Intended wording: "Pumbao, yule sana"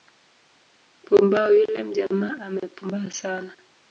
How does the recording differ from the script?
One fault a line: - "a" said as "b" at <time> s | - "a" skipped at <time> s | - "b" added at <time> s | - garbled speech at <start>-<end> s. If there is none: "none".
- "mjamaa amepumbaa" added at 1.8 s